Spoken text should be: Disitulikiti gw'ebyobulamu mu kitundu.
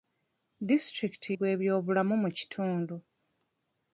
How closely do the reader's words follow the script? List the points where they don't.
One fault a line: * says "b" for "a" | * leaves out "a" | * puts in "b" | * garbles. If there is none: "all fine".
all fine